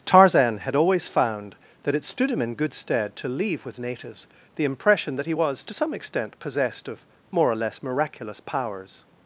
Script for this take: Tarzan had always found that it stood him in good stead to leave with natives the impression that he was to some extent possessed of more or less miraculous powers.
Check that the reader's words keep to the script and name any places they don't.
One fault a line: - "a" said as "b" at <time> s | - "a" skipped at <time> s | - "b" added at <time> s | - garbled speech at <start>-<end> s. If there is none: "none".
none